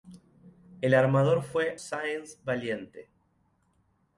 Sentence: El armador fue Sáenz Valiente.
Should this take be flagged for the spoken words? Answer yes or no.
no